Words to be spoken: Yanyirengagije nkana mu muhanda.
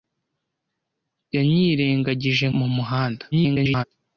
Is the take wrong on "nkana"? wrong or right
wrong